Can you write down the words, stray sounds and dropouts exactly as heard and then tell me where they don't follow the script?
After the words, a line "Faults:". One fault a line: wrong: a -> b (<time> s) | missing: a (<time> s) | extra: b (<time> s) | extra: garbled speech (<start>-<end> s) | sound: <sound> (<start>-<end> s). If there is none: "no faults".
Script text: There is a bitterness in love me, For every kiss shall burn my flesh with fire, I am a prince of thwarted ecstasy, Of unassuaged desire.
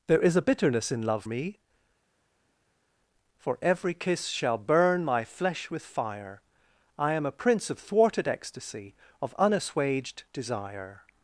There is a bitterness in love me, For every kiss shall burn my flesh with fire, I am a prince of thwarted ecstasy, Of unassuaged desire.
Faults:
no faults